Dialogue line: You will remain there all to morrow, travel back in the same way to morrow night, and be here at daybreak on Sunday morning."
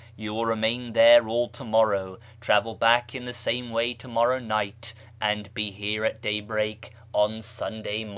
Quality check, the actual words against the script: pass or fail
pass